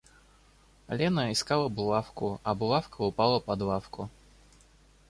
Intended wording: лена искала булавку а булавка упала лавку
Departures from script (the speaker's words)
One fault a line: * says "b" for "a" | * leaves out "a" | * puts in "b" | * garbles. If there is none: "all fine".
* puts in "под"